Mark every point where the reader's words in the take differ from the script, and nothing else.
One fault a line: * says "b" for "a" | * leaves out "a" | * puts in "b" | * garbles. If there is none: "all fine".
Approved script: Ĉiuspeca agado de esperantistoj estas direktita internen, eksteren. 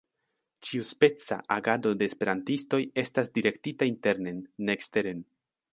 * puts in "ne"